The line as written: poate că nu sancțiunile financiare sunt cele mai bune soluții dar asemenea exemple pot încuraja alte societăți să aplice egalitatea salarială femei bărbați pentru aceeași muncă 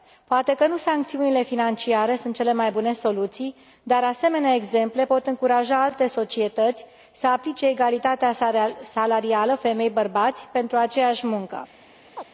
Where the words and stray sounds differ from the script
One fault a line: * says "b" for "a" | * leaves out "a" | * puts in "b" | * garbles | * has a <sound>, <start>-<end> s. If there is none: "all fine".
* has a chirp, 12.2-12.2 s